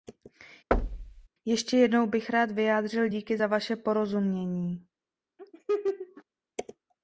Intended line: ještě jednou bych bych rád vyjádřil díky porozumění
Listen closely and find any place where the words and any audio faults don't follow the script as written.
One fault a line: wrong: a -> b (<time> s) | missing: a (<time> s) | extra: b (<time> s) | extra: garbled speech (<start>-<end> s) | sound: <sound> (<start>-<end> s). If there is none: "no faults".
sound: thud (0.7-1.3 s)
missing: bych (2.3 s)
extra: za vaše (3.3 s)
sound: laugh (5.4-6.2 s)